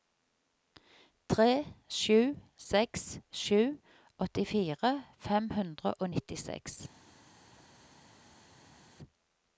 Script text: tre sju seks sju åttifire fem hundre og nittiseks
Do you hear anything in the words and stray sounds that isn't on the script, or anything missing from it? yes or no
no